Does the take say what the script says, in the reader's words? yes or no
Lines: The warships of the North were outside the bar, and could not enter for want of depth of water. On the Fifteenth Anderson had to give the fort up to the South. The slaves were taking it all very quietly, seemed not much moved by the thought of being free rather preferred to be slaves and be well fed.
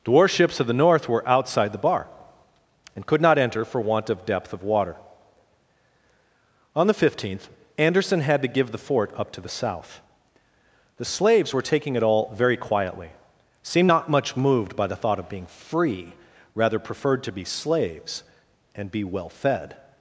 yes